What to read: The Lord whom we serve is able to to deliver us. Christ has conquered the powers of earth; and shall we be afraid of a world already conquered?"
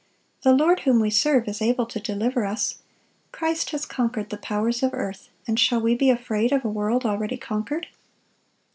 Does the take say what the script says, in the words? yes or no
no